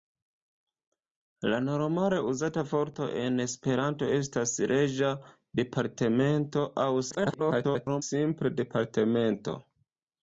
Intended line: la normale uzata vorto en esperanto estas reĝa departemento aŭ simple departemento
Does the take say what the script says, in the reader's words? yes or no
no